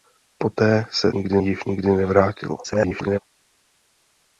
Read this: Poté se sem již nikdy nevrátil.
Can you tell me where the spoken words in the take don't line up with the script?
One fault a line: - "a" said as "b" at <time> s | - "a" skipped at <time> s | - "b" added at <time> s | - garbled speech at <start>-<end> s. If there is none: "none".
- "sem" said as "nikdy" at 1.1 s
- garbled speech at 2.6-3.2 s